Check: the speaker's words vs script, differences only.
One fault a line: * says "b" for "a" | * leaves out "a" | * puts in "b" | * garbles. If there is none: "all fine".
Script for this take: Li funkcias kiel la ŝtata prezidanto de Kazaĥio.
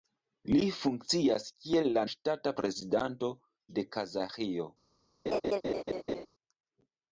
all fine